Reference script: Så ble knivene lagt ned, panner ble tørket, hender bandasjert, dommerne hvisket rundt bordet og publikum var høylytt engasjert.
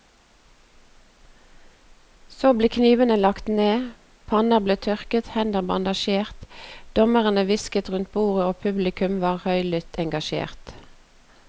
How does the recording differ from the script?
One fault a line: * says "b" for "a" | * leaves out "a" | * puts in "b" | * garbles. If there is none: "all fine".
all fine